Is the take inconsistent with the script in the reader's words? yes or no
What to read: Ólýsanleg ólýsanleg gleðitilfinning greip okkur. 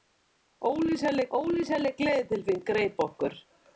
no